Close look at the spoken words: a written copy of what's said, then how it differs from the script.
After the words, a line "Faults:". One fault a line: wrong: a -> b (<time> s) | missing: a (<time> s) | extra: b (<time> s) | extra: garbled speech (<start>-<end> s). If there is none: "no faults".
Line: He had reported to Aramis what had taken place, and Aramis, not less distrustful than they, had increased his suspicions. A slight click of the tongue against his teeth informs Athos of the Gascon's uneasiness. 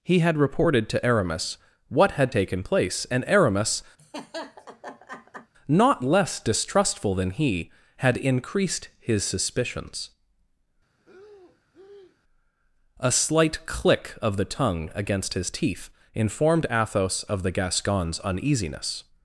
He had reported to Aramis what had taken place, and Aramis, not less distrustful than he, had increased his suspicions. A slight click of the tongue against his teeth informed Athos of the Gascon's uneasiness.
Faults:
wrong: they -> he (7.3 s)
wrong: informs -> informed (16.1 s)